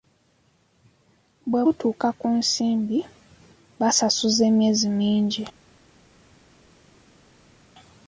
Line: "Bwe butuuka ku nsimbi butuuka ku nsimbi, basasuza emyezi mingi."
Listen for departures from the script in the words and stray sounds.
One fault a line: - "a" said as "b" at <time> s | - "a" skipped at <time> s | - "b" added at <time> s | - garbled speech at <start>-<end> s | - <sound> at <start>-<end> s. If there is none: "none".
- "butuuka ku nsimbi" skipped at 3.0 s